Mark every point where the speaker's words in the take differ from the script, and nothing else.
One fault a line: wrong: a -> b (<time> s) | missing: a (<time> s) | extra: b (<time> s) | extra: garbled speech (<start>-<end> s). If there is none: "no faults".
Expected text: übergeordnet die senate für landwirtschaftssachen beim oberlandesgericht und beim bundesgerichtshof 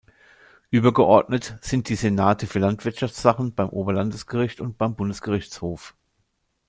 extra: sind (1.6 s)